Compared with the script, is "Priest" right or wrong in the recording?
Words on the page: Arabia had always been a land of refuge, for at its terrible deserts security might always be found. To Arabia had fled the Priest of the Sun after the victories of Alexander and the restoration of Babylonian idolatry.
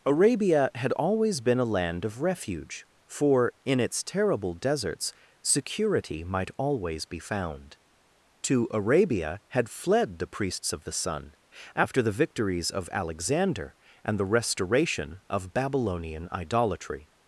wrong